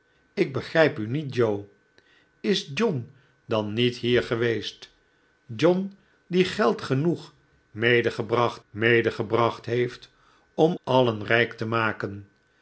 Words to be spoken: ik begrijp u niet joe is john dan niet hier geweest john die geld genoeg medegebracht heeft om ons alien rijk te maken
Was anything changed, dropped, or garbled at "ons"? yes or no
yes